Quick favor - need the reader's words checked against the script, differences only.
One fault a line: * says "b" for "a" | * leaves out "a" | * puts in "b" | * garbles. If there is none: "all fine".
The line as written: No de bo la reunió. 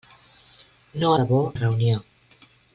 all fine